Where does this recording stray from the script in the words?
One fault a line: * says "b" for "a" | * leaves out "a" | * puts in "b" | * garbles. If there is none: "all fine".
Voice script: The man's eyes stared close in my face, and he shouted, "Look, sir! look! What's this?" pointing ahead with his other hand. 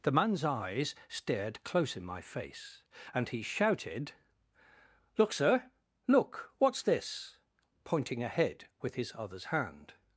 * says "others" for "other"